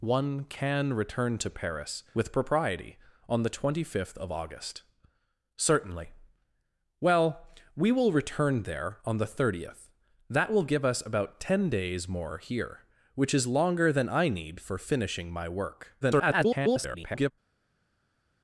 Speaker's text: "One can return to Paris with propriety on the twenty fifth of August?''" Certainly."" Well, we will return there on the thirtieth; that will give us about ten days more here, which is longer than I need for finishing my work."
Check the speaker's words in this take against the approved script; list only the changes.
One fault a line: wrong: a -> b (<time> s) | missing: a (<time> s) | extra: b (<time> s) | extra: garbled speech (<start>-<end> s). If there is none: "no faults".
extra: garbled speech (16.0-17.3 s)